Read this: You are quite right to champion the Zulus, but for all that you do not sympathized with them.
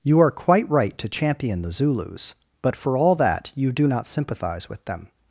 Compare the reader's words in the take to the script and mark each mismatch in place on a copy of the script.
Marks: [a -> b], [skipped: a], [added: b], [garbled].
You are quite right to champion the Zulus, but for all that you do not [sympathized -> sympathize] with them.